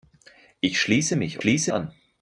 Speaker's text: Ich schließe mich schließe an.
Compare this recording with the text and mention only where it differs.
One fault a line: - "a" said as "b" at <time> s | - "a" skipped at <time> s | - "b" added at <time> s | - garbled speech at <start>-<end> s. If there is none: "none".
none